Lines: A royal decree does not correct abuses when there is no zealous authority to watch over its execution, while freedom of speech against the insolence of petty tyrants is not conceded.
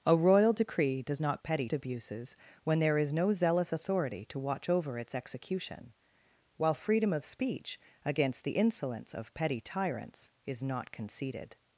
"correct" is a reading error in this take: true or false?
true